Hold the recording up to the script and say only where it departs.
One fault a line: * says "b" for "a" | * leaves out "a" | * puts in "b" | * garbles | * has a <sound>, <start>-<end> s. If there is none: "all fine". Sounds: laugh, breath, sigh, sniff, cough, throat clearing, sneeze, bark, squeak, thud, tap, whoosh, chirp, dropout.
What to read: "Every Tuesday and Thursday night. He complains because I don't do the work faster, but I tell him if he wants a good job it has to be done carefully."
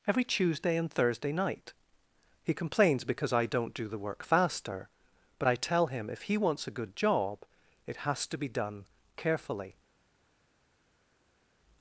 all fine